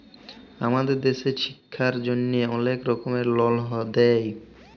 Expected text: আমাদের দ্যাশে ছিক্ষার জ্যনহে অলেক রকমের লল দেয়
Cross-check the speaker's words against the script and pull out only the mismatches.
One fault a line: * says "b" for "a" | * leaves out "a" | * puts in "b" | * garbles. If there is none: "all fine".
all fine